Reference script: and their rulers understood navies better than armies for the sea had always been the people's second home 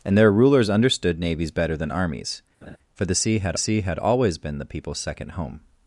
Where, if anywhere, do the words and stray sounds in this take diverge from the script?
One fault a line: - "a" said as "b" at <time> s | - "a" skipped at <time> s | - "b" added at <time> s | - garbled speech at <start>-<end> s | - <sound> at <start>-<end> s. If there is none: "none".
- laugh at 2.6-2.8 s
- "sea had" added at 3.6 s